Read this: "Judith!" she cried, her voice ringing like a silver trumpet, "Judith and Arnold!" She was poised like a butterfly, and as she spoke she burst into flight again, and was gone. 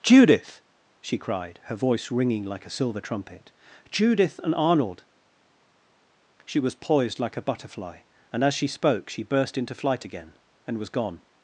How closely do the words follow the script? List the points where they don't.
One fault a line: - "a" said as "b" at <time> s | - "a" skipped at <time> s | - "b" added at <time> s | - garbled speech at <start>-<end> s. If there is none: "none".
none